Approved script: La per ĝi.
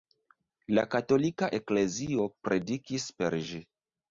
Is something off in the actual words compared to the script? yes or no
yes